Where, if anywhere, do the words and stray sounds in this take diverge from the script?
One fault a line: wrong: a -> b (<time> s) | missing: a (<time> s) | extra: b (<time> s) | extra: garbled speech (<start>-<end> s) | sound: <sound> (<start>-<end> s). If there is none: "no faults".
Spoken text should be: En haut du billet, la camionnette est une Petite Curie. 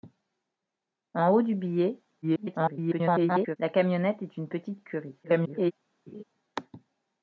extra: garbled speech (2.2-3.6 s)
extra: garbled speech (5.2-5.7 s)
sound: laugh (6.1-6.2 s)